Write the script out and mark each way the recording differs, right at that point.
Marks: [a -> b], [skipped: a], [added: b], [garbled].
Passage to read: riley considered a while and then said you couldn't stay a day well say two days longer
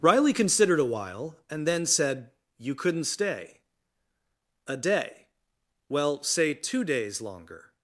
riley considered a while and then said you couldn't stay a day well say two days longer